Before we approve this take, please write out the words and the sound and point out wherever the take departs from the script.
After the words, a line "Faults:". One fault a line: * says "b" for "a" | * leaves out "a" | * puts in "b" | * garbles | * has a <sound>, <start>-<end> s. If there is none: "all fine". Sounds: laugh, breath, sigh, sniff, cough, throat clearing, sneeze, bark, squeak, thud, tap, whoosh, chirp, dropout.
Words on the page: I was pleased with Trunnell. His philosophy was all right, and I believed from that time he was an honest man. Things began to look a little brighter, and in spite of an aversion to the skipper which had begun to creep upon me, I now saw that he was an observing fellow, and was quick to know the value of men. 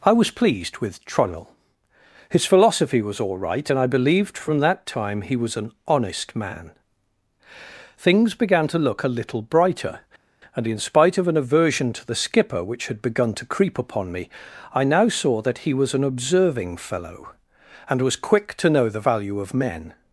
I was pleased with Trunnell. His philosophy was all right, and I believed from that time he was an honest man. Things began to look a little brighter, and in spite of an aversion to the skipper which had begun to creep upon me, I now saw that he was an observing fellow, and was quick to know the value of men.
Faults:
all fine